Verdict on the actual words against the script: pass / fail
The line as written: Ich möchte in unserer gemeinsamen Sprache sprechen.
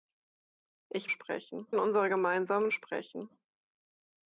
fail